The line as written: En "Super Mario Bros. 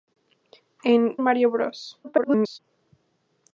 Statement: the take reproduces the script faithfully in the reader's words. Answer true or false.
false